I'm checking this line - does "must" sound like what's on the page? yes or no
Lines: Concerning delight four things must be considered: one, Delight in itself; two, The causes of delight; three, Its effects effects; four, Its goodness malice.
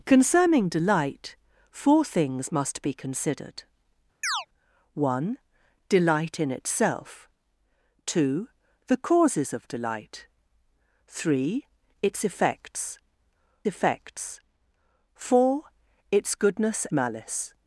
yes